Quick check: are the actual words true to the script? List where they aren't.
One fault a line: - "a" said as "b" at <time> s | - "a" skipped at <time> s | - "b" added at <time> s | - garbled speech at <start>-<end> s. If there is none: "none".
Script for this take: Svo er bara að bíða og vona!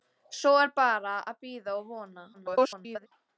- garbled speech at 2.3-3.1 s